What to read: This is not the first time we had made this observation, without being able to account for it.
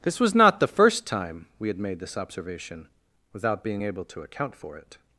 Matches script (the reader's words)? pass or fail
fail